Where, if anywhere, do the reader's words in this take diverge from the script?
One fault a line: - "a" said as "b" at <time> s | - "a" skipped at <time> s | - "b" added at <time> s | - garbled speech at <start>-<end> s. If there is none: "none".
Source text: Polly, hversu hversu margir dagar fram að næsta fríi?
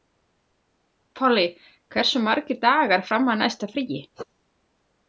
- "hversu" skipped at 2.2 s